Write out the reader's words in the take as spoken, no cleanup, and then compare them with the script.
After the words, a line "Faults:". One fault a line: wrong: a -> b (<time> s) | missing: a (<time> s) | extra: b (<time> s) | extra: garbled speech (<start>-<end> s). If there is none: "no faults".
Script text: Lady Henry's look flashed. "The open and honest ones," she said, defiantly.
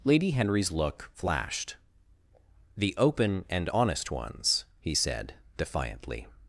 Lady Henry's look flashed. "The open and honest ones," he said, defiantly.
Faults:
wrong: she -> he (4.8 s)